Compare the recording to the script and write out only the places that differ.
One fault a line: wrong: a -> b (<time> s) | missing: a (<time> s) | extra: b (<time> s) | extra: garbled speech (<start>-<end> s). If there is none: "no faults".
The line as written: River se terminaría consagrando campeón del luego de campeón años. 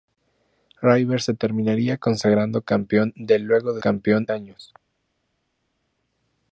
no faults